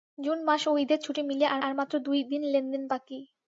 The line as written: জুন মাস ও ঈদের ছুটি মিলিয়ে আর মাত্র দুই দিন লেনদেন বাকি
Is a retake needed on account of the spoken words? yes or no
yes